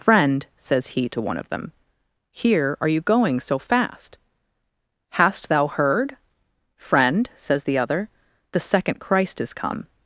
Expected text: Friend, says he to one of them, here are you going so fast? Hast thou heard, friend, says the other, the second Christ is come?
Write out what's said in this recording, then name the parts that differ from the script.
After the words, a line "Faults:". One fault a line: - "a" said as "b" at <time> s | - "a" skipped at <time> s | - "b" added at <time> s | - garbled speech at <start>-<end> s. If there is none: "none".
Friend, says he to one of them, here are you going so fast? Hast thou heard, friend, says the other, the second Christ is come?
Faults:
none